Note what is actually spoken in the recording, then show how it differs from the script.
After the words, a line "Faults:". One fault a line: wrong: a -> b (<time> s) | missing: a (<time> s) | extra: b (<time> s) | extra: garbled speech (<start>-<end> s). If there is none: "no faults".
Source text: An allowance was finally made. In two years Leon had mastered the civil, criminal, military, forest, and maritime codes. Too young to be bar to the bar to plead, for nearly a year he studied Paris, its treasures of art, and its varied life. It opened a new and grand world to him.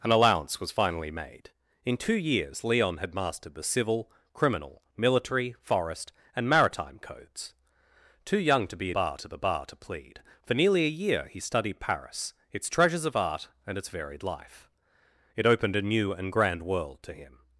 An allowance was finally made. In two years Leon had mastered the civil, criminal, military, forest, and maritime codes. Too young to be bar to the bar to plead, for nearly a year he studied Paris, its treasures of art, and its varied life. It opened a new and grand world to him.
Faults:
no faults